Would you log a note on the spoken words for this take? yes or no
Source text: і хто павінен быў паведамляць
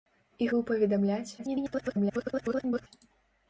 yes